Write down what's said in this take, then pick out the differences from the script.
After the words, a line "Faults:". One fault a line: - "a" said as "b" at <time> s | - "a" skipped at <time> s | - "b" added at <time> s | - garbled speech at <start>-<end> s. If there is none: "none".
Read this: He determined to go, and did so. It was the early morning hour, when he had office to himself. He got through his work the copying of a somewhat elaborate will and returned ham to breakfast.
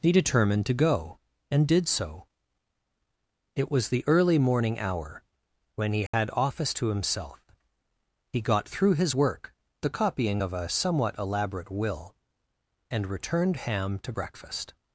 He determined to go, and did so. It was the early morning hour, when he had office to himself. He got through his work the copying of a somewhat elaborate will and returned ham to breakfast.
Faults:
none